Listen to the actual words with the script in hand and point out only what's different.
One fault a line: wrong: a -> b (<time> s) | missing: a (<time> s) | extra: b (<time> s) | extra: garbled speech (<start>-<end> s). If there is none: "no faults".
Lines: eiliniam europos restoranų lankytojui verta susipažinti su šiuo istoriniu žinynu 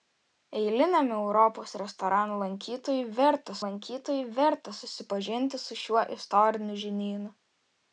extra: lankytojui verta (3.7 s)